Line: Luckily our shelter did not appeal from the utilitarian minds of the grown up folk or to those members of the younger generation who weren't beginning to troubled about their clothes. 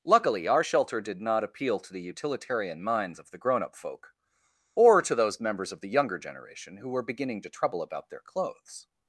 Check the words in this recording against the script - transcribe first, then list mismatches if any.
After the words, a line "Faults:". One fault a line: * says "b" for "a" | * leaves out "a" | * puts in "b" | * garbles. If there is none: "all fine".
Luckily our shelter did not appeal to the utilitarian minds of the grown up folk or to those members of the younger generation who were beginning to trouble about their clothes.
Faults:
* says "to" for "from"
* says "were" for "weren't"
* says "trouble" for "troubled"